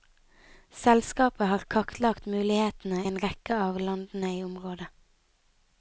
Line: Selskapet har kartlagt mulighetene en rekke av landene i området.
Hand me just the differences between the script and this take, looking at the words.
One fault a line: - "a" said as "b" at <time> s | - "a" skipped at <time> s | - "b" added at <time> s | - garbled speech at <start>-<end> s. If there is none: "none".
none